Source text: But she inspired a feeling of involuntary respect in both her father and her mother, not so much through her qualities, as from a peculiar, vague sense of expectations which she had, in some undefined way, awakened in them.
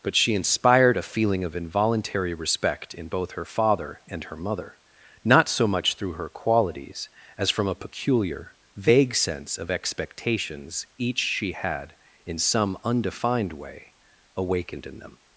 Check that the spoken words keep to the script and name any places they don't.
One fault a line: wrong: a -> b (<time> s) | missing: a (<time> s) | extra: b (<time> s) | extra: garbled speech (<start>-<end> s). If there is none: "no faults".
wrong: which -> each (11.0 s)